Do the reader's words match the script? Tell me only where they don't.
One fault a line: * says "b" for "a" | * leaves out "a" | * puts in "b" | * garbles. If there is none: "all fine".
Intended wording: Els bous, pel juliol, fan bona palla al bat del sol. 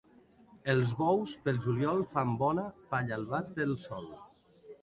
all fine